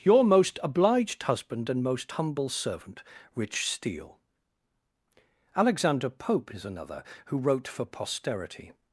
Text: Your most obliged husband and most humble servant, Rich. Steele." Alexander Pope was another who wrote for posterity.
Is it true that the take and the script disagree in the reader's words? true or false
true